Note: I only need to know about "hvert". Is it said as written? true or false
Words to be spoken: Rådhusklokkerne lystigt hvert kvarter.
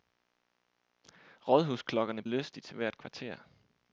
true